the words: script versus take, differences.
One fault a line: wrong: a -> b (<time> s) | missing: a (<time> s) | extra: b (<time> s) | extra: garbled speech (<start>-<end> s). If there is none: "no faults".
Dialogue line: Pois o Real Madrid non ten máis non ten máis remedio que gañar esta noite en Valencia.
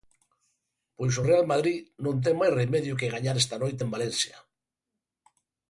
missing: non ten máis (2.5 s)